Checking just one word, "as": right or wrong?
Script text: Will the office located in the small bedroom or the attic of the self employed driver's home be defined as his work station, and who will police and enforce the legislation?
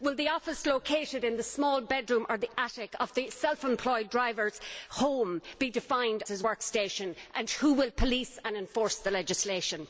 wrong